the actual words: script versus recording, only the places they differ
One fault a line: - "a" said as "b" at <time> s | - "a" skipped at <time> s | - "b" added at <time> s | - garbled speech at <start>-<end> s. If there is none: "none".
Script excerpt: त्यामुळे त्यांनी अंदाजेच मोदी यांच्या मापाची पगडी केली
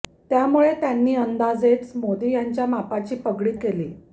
none